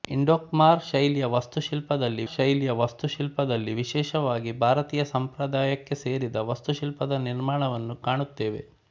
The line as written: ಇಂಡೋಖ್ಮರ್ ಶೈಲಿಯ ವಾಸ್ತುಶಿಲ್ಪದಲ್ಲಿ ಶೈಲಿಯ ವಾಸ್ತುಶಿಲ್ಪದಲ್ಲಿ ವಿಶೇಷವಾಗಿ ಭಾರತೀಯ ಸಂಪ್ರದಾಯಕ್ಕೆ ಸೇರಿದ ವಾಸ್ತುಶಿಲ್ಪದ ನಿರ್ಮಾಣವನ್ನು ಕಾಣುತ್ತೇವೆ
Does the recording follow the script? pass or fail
pass